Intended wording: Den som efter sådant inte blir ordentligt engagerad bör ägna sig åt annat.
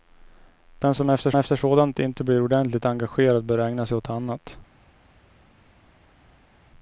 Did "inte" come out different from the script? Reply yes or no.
no